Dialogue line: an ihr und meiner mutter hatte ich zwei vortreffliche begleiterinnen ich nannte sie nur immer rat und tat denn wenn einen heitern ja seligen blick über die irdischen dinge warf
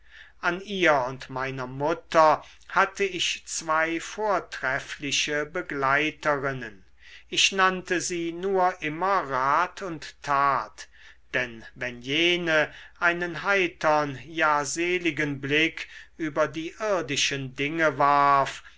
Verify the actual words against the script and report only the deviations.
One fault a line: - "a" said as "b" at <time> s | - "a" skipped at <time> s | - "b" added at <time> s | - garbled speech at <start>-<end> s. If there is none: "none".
- "jene" added at 12.0 s